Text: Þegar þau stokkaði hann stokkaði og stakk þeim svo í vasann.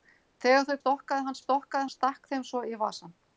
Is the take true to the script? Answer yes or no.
yes